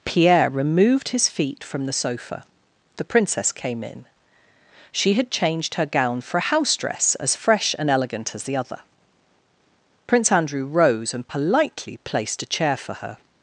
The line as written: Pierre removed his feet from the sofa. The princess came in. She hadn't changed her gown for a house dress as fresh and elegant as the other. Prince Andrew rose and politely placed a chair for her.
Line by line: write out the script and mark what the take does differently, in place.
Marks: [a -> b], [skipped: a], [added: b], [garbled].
Pierre removed his feet from the sofa. The princess came in. She [hadn't -> had] changed her gown for a house dress as fresh and elegant as the other. Prince Andrew rose and politely placed a chair for her.